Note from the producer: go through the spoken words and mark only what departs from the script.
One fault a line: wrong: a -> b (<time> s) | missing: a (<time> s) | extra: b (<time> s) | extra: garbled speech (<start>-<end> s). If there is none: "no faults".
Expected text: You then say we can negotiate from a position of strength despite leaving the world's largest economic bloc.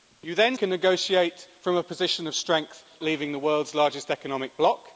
missing: say we (0.6 s)
missing: despite (2.8 s)